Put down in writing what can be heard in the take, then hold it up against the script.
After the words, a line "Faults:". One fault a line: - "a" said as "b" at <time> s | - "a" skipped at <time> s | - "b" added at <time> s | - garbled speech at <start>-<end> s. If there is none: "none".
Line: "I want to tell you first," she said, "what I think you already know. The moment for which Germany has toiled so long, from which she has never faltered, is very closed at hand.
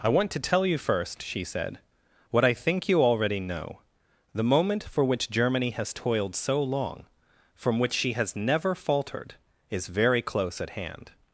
"I want to tell you first," she said, "what I think you already know. The moment for which Germany has toiled so long, from which she has never faltered, is very close at hand.
Faults:
- "closed" said as "close" at 10.2 s